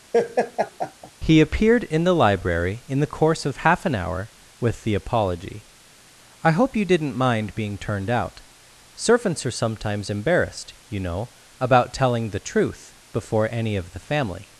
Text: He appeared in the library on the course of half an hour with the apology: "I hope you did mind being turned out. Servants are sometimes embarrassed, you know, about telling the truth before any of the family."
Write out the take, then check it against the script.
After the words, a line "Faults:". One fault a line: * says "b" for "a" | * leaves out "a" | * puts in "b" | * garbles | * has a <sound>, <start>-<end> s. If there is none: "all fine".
He appeared in the library in the course of half an hour with the apology: "I hope you didn't mind being turned out. Servants are sometimes embarrassed, you know, about telling the truth before any of the family."
Faults:
* has a laugh, 0.1-1.1 s
* says "in" for "on"
* says "didn't" for "did"